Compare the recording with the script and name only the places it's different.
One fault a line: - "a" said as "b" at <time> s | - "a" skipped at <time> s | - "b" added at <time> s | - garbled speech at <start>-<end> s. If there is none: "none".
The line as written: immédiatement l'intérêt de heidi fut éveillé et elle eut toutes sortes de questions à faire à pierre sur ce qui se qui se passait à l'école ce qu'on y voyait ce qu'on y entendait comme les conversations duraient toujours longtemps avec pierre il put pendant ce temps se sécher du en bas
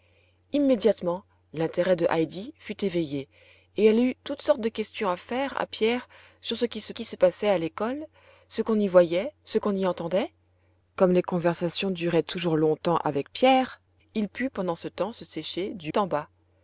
none